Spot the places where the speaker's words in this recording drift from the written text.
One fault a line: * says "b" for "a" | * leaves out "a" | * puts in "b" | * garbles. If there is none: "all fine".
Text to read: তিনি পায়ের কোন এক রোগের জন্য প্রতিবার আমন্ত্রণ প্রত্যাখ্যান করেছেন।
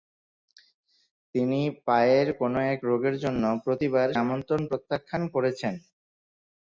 all fine